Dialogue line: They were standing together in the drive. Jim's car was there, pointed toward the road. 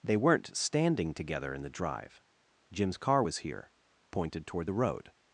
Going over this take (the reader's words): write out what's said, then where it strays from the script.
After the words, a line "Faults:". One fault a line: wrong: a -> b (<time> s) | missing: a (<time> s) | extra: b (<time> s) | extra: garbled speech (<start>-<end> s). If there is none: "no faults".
They weren't standing together in the drive. Jim's car was here, pointed toward the road.
Faults:
wrong: were -> weren't (0.2 s)
wrong: there -> here (3.4 s)